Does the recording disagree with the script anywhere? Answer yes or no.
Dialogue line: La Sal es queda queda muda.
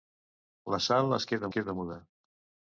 no